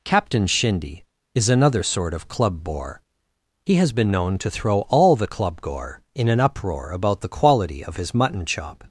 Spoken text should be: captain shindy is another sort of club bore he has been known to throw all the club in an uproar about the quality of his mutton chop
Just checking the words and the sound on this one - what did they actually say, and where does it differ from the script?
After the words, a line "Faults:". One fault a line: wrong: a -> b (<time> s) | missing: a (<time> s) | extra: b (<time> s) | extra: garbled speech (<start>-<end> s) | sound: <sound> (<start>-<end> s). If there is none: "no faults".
captain shindy is another sort of club bore he has been known to throw all the club gore in an uproar about the quality of his mutton chop
Faults:
extra: gore (5.6 s)